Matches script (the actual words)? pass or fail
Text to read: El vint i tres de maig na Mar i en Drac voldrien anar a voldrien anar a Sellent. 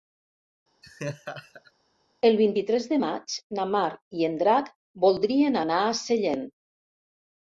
fail